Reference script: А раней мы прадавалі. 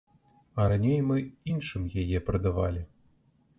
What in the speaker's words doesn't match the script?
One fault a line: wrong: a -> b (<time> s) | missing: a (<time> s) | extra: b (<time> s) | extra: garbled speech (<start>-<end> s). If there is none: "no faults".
extra: іншым яе (1.6 s)